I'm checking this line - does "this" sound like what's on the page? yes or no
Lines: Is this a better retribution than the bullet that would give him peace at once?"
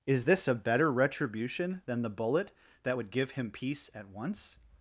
yes